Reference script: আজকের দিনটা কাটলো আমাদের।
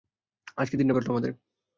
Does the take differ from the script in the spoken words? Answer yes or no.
no